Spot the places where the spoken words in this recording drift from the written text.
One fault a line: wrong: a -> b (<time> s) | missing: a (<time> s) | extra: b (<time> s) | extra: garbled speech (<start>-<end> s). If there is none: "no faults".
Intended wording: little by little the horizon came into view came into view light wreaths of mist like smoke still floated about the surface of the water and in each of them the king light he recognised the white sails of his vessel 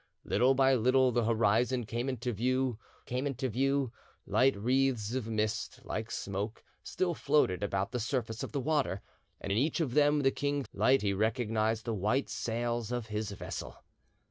no faults